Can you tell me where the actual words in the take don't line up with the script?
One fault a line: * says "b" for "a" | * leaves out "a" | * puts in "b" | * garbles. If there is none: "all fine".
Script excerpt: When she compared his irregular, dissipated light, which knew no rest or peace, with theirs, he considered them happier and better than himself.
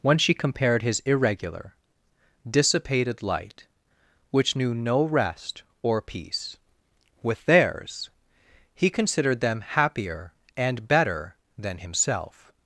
all fine